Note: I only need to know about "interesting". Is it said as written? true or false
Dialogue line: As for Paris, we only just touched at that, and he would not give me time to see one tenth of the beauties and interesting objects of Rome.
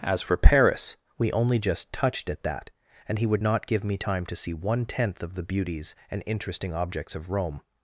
true